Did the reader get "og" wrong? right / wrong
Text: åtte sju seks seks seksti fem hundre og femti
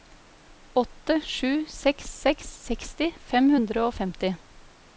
right